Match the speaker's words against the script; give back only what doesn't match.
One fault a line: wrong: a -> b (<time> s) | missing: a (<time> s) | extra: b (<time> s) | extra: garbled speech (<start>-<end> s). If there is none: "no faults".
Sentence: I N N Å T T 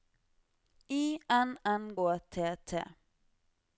no faults